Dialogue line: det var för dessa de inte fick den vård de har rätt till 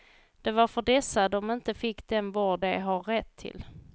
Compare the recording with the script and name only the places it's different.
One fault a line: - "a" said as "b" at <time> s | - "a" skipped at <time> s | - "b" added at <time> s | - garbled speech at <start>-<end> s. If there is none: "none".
none